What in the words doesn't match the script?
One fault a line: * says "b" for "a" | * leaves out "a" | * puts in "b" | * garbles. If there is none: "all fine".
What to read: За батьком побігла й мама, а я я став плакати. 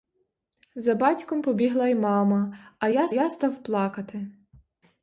all fine